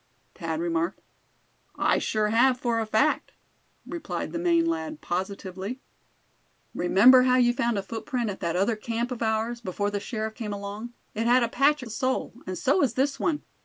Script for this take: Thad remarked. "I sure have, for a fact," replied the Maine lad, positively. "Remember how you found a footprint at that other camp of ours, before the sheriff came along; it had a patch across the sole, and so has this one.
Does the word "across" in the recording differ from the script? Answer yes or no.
yes